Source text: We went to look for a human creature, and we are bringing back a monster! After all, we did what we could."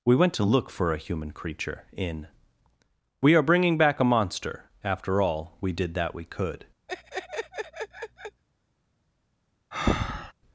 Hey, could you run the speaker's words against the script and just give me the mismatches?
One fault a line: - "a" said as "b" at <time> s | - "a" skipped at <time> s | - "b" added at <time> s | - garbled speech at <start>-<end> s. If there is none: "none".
- "and" said as "in" at 1.9 s
- "what" said as "that" at 5.9 s